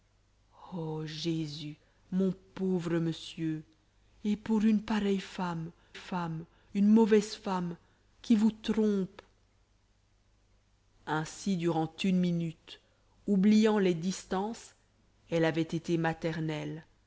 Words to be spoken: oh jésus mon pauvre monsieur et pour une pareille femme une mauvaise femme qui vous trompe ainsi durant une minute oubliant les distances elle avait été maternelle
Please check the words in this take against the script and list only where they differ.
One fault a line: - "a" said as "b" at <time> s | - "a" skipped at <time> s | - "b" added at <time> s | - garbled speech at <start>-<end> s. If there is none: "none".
- "femme" added at 5.9 s